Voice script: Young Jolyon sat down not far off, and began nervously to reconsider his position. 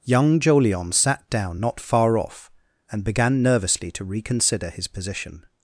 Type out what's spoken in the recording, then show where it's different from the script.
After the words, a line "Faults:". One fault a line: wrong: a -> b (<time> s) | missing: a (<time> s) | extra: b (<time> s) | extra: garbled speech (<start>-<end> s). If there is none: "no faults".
Young Jolyon sat down not far off, and began nervously to reconsider his position.
Faults:
no faults